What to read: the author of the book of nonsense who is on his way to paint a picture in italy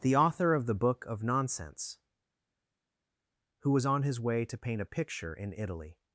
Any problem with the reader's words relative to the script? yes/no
yes